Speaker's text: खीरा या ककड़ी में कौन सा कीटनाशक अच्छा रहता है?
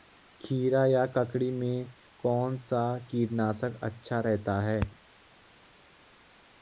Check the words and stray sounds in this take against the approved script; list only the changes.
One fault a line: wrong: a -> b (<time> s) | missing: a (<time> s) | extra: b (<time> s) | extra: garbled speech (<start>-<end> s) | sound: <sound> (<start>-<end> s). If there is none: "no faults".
no faults